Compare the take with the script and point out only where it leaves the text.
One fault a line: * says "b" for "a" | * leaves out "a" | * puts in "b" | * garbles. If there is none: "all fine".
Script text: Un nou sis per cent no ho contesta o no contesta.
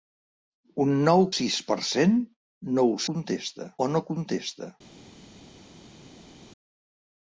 all fine